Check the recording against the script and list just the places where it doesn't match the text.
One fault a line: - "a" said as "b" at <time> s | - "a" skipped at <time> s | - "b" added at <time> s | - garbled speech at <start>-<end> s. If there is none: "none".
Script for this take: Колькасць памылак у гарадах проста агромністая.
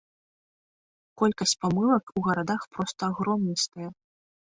none